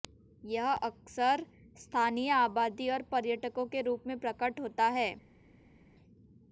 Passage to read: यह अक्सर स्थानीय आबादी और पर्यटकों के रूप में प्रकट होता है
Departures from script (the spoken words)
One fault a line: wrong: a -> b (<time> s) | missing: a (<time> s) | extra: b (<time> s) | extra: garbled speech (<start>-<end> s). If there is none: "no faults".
no faults